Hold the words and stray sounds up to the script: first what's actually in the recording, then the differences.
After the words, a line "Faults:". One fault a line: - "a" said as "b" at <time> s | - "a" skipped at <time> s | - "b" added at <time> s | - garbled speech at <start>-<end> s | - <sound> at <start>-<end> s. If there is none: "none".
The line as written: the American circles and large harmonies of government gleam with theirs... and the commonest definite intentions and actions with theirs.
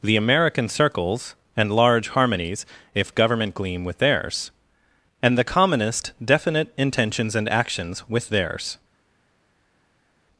the American circles and large harmonies if government gleam with theirs... and the commonest definite intentions and actions with theirs.
Faults:
- "of" said as "if" at 3.0 s